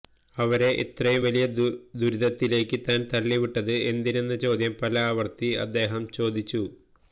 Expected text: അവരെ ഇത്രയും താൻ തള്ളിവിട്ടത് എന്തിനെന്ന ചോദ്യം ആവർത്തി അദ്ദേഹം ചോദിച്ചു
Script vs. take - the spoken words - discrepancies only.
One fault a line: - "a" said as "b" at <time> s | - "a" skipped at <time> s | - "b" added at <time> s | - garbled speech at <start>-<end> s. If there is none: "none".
- "വലിയ ദുരിതത്തിലേക്ക്" added at 1.2 s
- "പല" added at 4.8 s